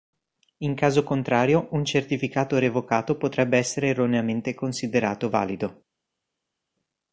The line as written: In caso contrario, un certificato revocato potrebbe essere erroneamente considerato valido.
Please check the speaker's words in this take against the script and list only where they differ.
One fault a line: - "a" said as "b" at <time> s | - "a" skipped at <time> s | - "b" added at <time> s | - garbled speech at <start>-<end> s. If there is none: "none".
none